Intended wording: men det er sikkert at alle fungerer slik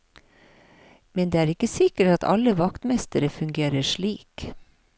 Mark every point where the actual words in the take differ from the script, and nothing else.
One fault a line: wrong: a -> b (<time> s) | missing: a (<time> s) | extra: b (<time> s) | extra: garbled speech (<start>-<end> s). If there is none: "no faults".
extra: ikke (1.5 s)
extra: vaktmestere (2.6 s)